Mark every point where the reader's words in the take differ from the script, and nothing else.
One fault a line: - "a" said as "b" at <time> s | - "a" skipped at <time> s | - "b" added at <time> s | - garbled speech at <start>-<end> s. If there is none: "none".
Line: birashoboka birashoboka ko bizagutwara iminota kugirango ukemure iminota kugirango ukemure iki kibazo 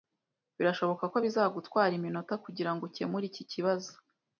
- "birashoboka" skipped at 1.0 s
- "iminota kugirango ukemure" skipped at 3.2 s